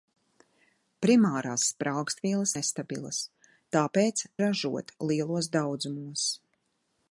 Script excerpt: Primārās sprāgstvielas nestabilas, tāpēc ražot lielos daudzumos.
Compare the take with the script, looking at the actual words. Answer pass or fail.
pass